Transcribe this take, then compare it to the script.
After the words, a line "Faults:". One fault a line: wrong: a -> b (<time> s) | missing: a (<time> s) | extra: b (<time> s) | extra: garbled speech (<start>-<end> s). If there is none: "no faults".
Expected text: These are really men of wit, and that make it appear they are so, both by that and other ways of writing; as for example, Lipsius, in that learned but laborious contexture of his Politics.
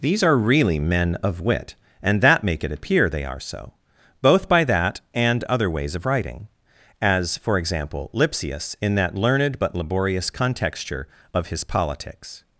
These are really men of wit, and that make it appear they are so, both by that and other ways of writing; as for example, Lipsius, in that learned but laborious contexture of his Politics.
Faults:
no faults